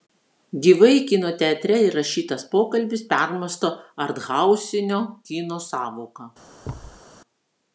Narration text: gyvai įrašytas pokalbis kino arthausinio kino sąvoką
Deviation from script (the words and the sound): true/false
true